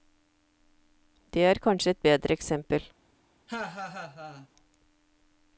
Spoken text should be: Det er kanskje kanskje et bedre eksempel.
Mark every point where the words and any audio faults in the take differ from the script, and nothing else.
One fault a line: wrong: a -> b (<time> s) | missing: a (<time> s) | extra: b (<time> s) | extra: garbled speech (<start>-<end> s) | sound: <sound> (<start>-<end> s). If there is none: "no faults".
missing: kanskje (1.9 s)
sound: laugh (3.5-4.5 s)